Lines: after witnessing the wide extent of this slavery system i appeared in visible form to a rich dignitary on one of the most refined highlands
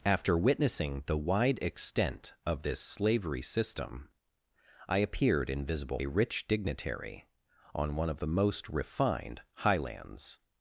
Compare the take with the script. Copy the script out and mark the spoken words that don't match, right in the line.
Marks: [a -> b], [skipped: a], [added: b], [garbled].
after witnessing the wide extent of this slavery system i appeared in visible [skipped: form to] a rich dignitary on one of the most refined highlands